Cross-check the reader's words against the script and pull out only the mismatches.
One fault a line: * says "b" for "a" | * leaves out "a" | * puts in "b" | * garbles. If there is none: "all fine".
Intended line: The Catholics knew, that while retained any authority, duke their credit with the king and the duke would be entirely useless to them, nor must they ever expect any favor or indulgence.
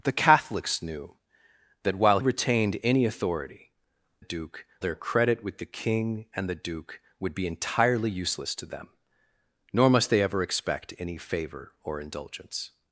all fine